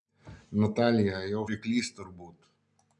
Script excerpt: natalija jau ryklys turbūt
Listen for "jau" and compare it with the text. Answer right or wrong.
right